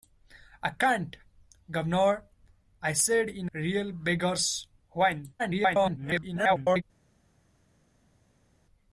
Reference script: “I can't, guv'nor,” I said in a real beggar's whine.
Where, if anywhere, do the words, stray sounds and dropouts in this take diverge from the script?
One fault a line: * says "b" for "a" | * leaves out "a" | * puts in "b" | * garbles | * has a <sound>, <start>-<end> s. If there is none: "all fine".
* leaves out "a"
* garbles